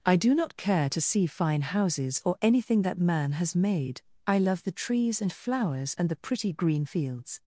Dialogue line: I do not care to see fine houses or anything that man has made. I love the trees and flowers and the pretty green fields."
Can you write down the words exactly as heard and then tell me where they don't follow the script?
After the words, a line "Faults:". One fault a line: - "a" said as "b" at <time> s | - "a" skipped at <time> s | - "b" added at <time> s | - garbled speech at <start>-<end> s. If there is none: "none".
I do not care to see fine houses or anything that man has made. I love the trees and flowers and the pretty green fields."
Faults:
none